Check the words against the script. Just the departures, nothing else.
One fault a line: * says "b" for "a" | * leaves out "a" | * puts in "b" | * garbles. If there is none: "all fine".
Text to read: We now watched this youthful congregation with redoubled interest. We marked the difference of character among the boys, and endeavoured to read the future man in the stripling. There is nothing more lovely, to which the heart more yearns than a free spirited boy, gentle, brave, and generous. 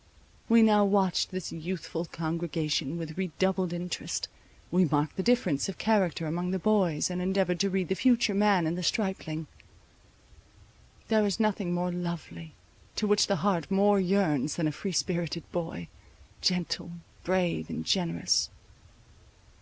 all fine